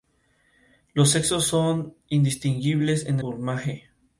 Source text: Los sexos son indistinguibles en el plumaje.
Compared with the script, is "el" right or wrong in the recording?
wrong